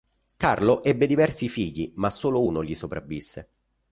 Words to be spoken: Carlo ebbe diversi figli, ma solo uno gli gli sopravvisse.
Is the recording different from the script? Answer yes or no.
yes